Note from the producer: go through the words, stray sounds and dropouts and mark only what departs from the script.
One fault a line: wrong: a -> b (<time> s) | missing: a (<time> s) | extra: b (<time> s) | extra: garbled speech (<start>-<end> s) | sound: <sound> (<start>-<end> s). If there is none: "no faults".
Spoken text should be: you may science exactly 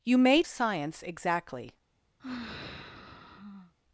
sound: sigh (2.2-3.7 s)